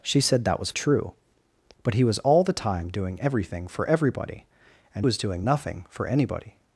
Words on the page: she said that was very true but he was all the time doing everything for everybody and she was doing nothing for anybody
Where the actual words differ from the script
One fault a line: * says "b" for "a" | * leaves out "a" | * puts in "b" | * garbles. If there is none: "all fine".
* leaves out "very"
* leaves out "she"